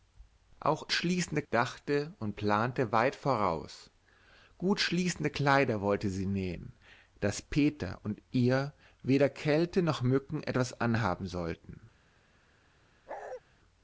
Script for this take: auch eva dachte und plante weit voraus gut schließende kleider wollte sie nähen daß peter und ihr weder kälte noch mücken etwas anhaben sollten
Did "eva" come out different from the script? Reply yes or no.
yes